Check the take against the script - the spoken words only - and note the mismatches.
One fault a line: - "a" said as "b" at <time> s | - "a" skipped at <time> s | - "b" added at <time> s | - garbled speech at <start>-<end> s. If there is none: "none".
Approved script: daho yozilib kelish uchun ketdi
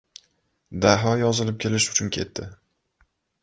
none